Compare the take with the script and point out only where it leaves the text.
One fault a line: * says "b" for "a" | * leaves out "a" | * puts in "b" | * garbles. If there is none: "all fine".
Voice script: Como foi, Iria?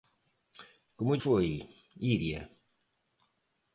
all fine